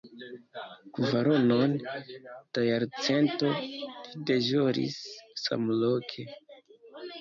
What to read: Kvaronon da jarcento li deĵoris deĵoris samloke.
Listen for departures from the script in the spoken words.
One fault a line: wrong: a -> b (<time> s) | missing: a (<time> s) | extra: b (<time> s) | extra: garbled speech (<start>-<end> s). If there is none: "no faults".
missing: deĵoris (5.0 s)